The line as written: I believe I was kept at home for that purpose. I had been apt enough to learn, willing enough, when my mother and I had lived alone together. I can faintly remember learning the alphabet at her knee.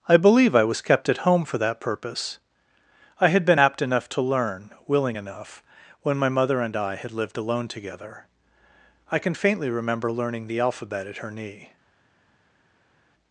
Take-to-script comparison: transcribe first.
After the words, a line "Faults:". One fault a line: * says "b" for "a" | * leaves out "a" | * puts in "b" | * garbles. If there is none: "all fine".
I believe I was kept at home for that purpose. I had been apt enough to learn, willing enough, when my mother and I had lived alone together. I can faintly remember learning the alphabet at her knee.
Faults:
all fine